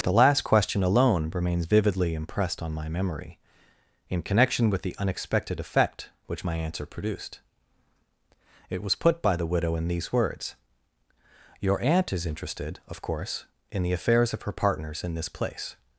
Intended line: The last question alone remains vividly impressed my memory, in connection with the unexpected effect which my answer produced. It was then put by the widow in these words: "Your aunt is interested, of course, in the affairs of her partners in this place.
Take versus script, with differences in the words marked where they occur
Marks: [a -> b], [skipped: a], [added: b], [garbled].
The last question alone remains vividly impressed [added: on] my memory, in connection with the unexpected effect which my answer produced. It was [skipped: then] put by the widow in these words: "Your aunt is interested, of course, in the affairs of her partners in this place.